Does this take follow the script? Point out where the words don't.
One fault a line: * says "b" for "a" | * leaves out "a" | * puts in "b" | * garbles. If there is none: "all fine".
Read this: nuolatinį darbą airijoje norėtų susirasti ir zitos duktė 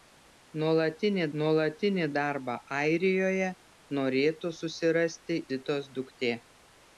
* puts in "nuolatinį"
* leaves out "ir"